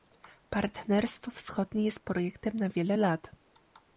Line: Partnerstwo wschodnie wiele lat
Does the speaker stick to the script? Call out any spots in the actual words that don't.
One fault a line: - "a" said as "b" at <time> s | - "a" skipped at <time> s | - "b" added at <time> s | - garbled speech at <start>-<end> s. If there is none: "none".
- "jest projektem na" added at 1.9 s